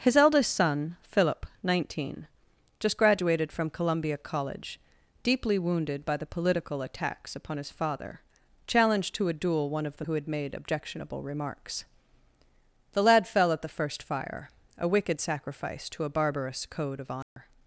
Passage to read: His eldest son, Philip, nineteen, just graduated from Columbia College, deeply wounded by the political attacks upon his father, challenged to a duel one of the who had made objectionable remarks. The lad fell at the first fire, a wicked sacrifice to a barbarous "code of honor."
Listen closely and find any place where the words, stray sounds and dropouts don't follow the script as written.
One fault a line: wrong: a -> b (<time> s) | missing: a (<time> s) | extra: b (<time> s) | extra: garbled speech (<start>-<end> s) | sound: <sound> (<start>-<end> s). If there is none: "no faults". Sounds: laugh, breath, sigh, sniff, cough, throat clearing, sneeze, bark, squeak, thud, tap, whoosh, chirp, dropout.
sound: dropout (17.2-17.4 s)